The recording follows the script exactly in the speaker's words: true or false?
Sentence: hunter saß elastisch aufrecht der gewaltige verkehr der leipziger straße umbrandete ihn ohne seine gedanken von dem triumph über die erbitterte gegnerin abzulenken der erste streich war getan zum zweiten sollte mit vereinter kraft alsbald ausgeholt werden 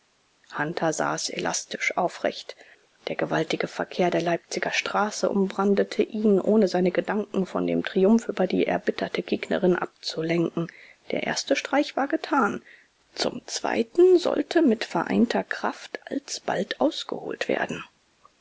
true